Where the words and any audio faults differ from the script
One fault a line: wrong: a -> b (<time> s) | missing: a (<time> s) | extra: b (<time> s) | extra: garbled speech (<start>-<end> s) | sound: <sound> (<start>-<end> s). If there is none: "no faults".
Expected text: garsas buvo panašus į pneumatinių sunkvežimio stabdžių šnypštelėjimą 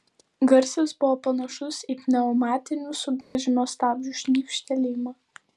sound: dropout (3.2-3.4 s)